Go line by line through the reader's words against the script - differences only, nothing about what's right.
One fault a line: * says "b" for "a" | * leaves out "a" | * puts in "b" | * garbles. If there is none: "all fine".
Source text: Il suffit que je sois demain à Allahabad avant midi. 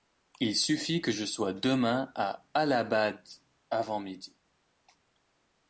all fine